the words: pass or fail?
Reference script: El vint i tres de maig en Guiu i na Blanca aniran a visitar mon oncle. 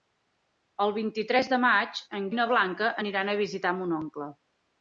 fail